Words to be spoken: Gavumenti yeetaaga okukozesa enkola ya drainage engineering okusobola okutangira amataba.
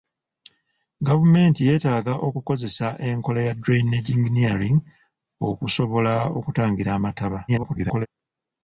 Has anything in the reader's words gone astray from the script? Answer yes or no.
yes